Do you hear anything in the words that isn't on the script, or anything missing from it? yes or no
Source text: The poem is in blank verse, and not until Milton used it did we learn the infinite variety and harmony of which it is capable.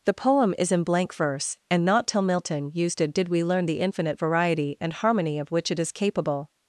yes